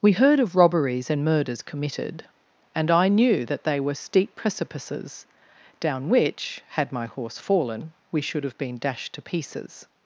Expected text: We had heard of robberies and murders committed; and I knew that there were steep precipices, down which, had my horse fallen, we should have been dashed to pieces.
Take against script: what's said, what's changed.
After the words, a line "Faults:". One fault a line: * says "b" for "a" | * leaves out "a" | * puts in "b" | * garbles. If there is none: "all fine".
We heard of robberies and murders committed; and I knew that they were steep precipices, down which, had my horse fallen, we should have been dashed to pieces.
Faults:
* leaves out "had"
* says "they" for "there"